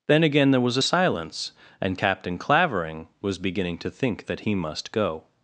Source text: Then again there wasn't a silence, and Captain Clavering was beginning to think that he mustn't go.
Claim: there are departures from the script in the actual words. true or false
true